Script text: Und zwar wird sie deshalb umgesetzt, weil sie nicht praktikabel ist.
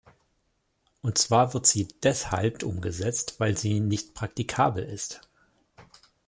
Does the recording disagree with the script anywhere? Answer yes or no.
no